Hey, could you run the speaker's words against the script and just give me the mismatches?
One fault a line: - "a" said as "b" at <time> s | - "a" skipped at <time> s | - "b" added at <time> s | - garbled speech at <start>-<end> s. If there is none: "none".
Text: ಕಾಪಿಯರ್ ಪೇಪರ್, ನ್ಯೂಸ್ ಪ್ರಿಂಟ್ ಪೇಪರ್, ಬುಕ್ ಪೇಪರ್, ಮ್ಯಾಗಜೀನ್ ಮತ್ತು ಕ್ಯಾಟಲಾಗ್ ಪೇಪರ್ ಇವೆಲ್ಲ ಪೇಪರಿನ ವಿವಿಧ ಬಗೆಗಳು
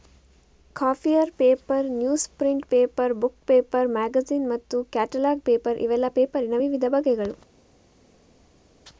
none